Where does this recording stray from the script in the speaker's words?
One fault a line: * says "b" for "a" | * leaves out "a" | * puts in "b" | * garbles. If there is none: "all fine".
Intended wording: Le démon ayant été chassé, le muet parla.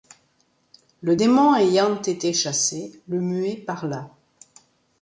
all fine